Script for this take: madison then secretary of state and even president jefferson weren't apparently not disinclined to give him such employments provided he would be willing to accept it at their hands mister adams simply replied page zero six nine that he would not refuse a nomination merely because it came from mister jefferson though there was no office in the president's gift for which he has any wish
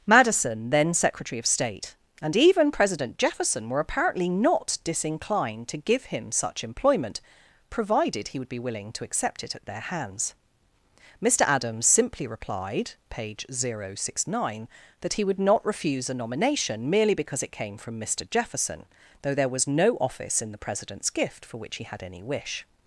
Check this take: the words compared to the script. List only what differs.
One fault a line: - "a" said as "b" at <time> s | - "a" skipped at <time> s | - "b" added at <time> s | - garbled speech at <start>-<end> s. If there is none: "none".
- "weren't" said as "were" at 3.7 s
- "employments" said as "employment" at 6.6 s
- "has" said as "had" at 21.8 s